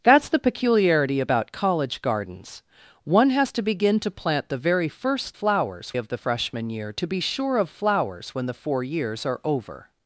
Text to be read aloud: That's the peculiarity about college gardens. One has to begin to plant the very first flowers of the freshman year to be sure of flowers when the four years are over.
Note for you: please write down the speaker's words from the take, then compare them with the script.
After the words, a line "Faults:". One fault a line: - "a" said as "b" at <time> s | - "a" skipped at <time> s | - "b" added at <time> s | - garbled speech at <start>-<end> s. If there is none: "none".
That's the peculiarity about college gardens. One has to begin to plant the very first flowers of the freshman year to be sure of flowers when the four years are over.
Faults:
none